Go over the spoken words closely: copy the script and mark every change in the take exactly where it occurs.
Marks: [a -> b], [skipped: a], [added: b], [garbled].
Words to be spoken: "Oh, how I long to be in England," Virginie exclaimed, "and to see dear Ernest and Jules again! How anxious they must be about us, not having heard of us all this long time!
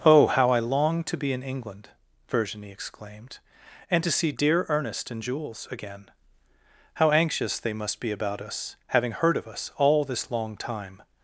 "Oh, how I long to be in England," Virginie exclaimed, "and to see dear Ernest and Jules again! How anxious they must be about us, [skipped: not] having heard of us all this long time!